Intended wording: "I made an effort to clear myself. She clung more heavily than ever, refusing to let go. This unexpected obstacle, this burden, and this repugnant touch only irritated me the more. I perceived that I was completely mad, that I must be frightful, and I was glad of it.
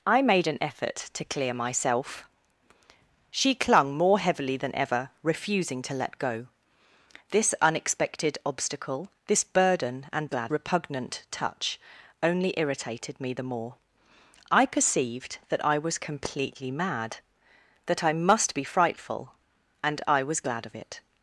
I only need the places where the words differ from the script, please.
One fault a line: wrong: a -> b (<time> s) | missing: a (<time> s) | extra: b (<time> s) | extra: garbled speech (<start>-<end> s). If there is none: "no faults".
wrong: this -> glad (10.3 s)